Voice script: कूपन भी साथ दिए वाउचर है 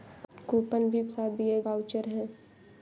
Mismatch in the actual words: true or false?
false